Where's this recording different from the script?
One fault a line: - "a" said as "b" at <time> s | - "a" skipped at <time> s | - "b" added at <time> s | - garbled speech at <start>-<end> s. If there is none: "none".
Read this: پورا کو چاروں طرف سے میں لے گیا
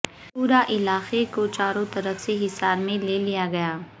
- "علاقے" added at 0.7 s
- "حصار" added at 2.4 s
- "لیا" added at 3.2 s